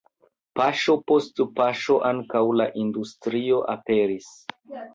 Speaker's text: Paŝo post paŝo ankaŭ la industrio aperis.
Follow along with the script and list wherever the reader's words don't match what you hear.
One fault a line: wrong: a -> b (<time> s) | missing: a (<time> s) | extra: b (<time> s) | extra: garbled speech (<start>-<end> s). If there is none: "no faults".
no faults